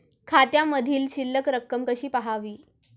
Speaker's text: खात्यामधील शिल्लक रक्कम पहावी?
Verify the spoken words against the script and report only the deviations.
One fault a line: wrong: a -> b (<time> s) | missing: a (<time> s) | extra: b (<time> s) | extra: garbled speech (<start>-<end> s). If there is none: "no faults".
extra: कशी (1.8 s)